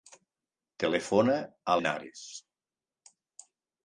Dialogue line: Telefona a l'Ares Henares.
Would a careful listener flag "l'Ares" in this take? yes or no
yes